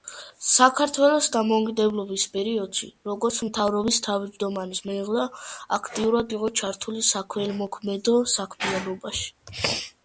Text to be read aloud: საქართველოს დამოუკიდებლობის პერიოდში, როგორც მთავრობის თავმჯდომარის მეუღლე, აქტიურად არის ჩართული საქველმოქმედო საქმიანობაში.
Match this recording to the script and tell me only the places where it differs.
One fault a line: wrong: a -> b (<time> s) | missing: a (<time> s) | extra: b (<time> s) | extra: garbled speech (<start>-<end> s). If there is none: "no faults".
wrong: არის -> იყო (6.4 s)